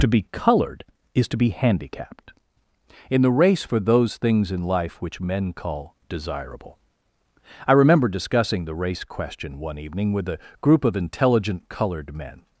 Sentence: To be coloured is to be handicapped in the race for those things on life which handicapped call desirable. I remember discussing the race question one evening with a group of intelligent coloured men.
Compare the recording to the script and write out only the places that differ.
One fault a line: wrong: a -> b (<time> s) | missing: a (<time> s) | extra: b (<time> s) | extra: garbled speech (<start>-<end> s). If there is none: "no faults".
wrong: on -> in (4.5 s)
wrong: handicapped -> men (5.2 s)